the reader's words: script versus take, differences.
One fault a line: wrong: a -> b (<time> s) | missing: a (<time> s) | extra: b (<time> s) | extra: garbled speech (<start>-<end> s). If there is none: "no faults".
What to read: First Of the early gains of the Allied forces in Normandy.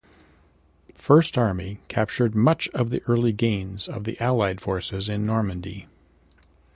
extra: Army captured much (1.4 s)